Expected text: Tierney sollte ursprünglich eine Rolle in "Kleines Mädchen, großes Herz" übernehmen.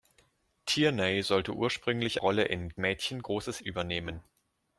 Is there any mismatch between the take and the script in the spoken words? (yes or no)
yes